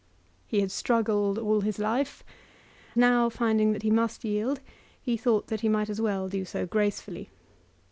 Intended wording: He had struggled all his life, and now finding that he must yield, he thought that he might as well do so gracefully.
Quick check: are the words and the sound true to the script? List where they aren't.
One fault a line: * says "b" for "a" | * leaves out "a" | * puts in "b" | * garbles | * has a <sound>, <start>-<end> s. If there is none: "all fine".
* leaves out "and"